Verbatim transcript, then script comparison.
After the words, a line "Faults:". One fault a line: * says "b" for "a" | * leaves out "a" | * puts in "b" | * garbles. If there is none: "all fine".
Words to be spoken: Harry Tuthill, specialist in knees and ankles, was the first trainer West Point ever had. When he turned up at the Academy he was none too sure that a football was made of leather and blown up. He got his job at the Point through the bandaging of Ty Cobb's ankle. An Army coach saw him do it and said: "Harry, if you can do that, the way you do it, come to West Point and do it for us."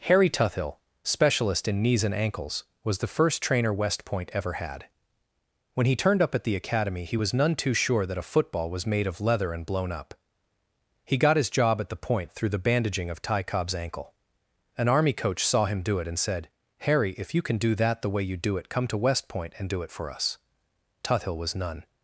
Harry Tuthill, specialist in knees and ankles, was the first trainer West Point ever had. When he turned up at the Academy he was none too sure that a football was made of leather and blown up. He got his job at the Point through the bandaging of Ty Cobb's ankle. An Army coach saw him do it and said: "Harry, if you can do that, the way you do it, come to West Point and do it for us." Tuthill was none
Faults:
* puts in "Tuthill was none"